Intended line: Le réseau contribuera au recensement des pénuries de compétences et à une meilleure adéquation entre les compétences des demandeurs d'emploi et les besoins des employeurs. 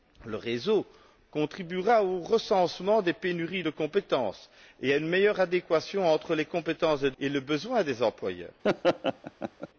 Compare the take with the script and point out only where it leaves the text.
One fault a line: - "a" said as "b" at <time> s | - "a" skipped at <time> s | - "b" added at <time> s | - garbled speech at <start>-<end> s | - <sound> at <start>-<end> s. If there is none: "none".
- "demandeurs d'emploi" skipped at 7.1 s
- laugh at 8.6-9.7 s